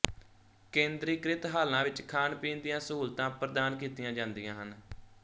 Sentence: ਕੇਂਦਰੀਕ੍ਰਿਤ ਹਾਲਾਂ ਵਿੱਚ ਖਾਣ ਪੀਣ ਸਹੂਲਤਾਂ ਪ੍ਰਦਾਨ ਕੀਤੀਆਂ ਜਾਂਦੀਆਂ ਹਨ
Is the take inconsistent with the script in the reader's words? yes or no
yes